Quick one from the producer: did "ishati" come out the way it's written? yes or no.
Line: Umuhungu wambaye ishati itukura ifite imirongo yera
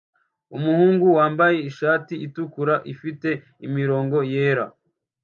yes